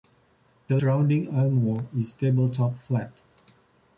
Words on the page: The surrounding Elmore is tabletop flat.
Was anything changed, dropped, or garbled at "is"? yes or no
no